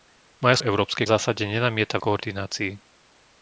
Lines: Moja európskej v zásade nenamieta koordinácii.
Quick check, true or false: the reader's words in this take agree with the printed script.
true